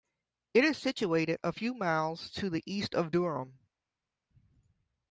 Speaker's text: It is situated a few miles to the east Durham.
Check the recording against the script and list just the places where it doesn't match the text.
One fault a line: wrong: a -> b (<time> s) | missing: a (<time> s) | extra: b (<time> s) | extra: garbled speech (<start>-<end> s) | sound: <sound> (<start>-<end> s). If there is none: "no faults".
extra: of (2.9 s)